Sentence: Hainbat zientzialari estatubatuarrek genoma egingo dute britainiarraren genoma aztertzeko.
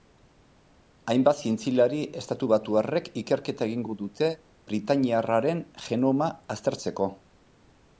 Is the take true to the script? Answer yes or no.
no